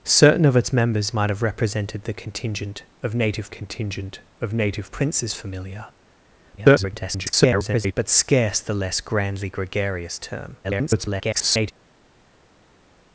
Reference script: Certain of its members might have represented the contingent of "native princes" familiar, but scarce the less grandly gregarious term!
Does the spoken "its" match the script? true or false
true